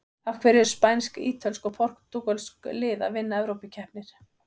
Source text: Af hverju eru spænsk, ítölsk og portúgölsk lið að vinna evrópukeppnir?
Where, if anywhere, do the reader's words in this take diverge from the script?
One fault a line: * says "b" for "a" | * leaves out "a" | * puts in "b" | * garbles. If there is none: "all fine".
all fine